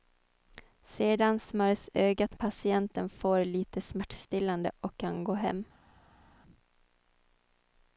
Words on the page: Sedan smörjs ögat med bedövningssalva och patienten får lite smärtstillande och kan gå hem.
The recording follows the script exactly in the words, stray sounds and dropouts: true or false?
false